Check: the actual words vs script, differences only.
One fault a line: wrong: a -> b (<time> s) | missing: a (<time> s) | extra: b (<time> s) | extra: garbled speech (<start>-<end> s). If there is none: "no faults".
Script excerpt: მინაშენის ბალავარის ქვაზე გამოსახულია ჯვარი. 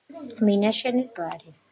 missing: ბალავარის ქვაზე გამოსახულია (1.1 s)